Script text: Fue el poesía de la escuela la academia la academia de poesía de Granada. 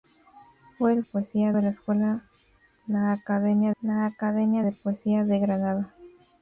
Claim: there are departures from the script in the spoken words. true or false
false